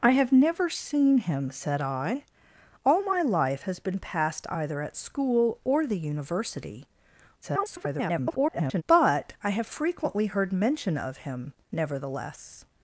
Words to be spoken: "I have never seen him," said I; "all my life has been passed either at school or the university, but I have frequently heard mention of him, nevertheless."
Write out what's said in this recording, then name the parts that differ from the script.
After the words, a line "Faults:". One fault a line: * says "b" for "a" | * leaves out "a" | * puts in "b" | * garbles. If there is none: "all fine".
"I have never seen him," said I; "all my life has been passed either at school or the university, [garbled] but I have frequently heard mention of him, nevertheless."
Faults:
* garbles